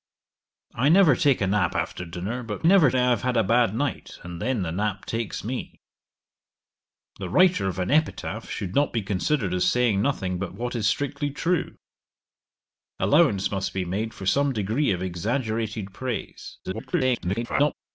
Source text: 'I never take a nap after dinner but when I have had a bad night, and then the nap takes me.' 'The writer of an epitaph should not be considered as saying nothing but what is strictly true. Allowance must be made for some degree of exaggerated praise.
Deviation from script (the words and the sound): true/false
true